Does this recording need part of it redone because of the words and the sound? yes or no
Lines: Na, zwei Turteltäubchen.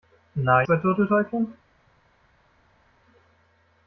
no